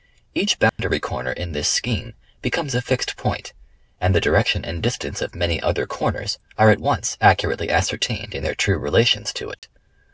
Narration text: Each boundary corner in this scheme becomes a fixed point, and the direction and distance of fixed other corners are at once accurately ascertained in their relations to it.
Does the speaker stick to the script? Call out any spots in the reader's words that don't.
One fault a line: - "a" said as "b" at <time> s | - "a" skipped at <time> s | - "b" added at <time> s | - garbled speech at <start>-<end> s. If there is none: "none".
- "fixed" said as "many" at 5.3 s
- "true" added at 8.6 s